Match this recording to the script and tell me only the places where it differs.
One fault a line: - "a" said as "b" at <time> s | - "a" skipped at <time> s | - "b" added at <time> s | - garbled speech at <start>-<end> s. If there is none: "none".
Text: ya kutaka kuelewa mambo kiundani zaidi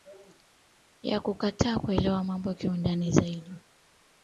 none